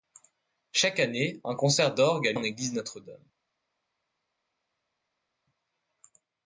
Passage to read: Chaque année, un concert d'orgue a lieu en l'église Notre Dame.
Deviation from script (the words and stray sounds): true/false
true